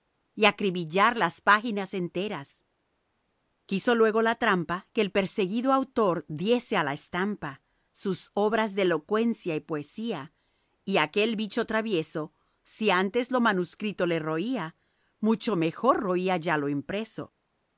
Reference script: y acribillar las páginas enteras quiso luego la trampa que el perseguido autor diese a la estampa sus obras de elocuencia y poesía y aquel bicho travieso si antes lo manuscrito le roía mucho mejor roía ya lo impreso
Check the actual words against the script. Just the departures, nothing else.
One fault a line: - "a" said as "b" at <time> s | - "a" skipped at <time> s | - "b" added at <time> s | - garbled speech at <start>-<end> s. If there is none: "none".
none